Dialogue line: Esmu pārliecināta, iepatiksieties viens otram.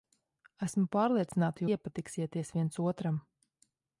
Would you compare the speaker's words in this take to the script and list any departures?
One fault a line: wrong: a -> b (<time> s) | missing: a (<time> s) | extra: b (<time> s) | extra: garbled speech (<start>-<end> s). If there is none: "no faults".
no faults